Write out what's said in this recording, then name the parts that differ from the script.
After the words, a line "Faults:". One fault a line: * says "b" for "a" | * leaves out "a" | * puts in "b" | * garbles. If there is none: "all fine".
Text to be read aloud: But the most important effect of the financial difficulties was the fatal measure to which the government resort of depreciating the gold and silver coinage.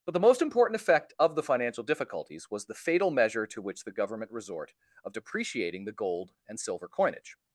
But the most important effect of the financial difficulties was the fatal measure to which the government resort of depreciating the gold and silver coinage.
Faults:
all fine